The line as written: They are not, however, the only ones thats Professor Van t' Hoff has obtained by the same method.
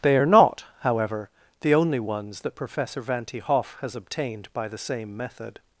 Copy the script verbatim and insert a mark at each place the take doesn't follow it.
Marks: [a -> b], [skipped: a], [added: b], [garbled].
They are not, however, the only ones [thats -> that] Professor Van t' Hoff has obtained by the same method.